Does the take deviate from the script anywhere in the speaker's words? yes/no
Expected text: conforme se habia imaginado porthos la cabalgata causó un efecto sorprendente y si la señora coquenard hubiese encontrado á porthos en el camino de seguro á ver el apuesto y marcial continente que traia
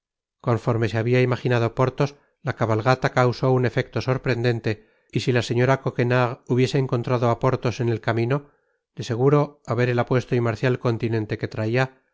no